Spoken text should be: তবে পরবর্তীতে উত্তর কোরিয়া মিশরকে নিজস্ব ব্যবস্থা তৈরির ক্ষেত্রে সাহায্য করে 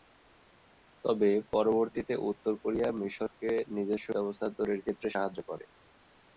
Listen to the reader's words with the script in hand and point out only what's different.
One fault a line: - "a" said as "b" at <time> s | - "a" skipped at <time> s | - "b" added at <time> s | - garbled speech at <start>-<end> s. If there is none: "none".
none